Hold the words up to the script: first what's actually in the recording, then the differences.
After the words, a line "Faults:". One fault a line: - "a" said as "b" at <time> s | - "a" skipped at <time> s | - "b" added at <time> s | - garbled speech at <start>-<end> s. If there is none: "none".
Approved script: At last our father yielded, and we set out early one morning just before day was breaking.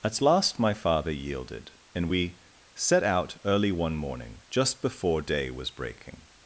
At last my father yielded, and we set out early one morning just before day was breaking.
Faults:
- "our" said as "my" at 0.6 s